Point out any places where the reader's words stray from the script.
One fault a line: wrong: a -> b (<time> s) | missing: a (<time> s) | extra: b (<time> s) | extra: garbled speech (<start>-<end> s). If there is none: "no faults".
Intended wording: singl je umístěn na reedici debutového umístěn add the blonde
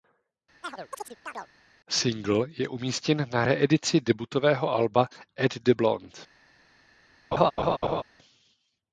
wrong: umístěn -> alba (4.7 s)